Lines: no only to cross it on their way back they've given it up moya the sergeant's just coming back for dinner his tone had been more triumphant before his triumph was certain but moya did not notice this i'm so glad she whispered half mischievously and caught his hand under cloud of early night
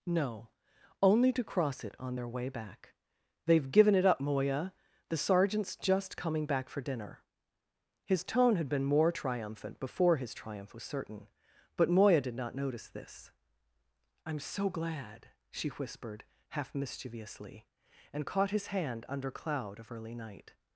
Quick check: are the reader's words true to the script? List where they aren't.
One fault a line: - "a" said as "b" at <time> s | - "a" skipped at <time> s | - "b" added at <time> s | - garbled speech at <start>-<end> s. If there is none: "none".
none